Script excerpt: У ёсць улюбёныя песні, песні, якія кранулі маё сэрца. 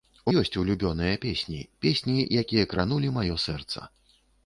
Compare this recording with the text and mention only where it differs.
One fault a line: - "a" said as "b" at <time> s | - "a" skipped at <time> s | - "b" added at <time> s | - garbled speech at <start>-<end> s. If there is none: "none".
none